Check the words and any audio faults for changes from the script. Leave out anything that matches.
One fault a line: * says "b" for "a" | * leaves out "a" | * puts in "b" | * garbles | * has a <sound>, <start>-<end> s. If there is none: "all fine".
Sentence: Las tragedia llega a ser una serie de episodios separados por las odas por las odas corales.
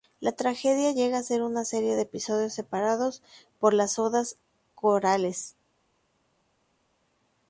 * says "La" for "Las"
* leaves out "por las odas"